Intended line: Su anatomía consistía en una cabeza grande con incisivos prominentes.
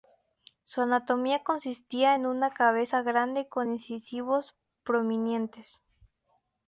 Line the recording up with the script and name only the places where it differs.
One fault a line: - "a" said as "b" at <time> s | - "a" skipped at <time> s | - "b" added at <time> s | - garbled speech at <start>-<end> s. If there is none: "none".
none